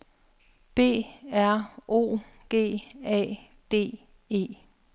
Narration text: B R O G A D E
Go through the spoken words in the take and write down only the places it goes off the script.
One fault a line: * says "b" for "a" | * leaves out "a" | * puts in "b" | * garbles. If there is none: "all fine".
all fine